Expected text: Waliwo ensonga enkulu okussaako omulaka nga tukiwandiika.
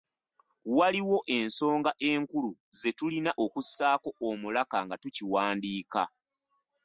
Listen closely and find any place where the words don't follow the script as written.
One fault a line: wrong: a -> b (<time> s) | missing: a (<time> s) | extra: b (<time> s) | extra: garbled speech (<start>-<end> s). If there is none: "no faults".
extra: ze tulina (2.8 s)